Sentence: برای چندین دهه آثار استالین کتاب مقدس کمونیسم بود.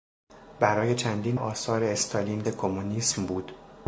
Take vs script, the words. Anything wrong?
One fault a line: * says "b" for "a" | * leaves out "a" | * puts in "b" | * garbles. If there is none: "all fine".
* leaves out "دهه"
* leaves out "کتاب مقدس"